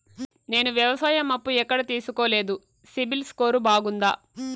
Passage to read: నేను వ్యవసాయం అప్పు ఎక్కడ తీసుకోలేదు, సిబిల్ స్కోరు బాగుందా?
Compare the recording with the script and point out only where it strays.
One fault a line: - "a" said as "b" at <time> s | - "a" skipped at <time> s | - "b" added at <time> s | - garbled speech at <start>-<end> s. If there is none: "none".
none